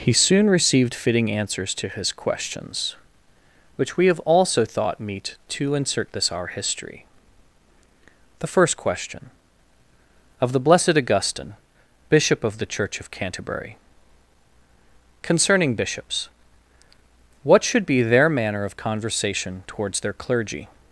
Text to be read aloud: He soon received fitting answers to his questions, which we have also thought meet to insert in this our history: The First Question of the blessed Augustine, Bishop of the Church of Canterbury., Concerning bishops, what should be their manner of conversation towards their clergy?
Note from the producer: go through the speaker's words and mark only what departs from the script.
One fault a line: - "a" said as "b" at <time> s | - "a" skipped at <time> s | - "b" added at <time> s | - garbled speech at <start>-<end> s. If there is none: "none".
- "in" skipped at 6.1 s